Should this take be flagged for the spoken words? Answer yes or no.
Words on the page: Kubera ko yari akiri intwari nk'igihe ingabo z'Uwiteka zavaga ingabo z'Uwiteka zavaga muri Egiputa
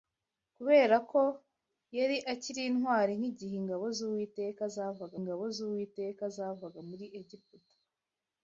no